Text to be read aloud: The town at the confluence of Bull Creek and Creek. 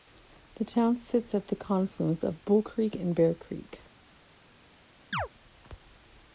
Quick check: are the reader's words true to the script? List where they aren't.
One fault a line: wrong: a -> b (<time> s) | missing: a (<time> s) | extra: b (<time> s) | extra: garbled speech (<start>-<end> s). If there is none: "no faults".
extra: sits (1.0 s)
extra: Bear (3.1 s)